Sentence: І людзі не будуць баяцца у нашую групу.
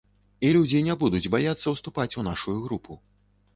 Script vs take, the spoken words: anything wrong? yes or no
yes